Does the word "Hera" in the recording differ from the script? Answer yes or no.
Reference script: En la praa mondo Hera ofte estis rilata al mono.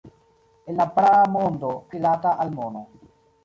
yes